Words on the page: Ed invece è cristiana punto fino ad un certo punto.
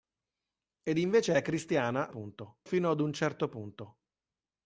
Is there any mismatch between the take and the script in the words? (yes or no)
no